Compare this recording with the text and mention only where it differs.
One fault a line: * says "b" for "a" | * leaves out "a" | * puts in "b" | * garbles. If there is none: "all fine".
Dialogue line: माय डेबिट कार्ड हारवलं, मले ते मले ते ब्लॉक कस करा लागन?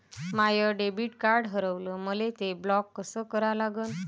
* leaves out "मले ते"